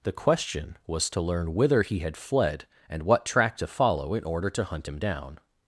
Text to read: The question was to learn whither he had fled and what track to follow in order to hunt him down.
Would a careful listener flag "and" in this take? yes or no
no